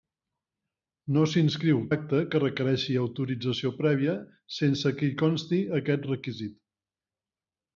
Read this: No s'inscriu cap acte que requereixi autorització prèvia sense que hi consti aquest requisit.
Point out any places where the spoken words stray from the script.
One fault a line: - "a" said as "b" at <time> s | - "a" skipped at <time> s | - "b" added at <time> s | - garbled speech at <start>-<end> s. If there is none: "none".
- "cap" skipped at 1.8 s